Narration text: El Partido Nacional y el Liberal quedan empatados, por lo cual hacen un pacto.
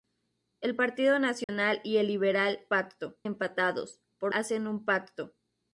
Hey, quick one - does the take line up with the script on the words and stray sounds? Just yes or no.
no